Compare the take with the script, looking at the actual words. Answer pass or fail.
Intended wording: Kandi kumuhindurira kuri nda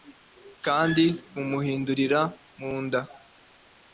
fail